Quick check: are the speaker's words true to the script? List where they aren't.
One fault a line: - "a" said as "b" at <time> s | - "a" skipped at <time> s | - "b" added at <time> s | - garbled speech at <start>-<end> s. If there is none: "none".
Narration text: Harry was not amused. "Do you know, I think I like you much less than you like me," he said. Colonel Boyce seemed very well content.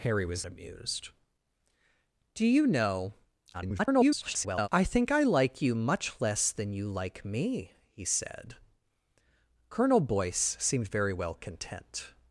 - "not" skipped at 0.5 s
- garbled speech at 3.5-4.7 s